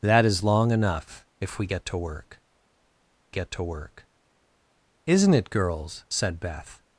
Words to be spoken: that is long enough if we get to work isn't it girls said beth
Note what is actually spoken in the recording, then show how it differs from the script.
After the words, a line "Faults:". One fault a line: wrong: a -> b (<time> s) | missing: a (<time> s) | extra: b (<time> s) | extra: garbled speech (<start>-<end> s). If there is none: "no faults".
that is long enough if we get to work get to work isn't it girls said beth
Faults:
extra: get to work (3.3 s)